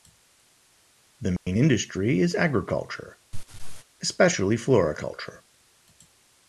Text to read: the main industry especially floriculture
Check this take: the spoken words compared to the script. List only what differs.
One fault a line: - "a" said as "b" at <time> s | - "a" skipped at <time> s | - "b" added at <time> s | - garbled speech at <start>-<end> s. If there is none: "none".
- "is agriculture" added at 2.2 s